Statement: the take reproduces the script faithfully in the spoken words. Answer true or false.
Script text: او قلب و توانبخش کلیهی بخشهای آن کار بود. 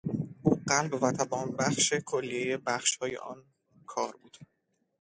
true